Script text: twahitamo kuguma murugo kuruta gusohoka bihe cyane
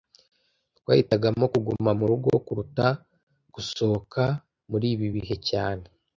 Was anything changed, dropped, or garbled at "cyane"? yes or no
no